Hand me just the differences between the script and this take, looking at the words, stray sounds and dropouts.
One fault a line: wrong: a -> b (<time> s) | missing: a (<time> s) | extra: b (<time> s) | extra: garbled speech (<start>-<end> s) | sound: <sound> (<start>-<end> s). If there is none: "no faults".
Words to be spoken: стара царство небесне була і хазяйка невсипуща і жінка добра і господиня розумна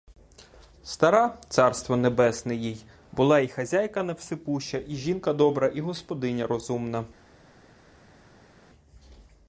extra: їй (2.5 s)